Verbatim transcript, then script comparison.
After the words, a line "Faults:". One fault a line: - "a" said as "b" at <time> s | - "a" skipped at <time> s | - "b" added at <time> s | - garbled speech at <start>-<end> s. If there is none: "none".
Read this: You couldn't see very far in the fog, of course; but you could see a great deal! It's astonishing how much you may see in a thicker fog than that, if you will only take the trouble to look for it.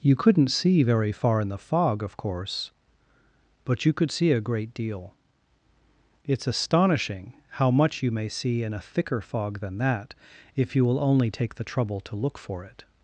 You couldn't see very far in the fog, of course; but you could see a great deal! It's astonishing how much you may see in a thicker fog than that, if you will only take the trouble to look for it.
Faults:
none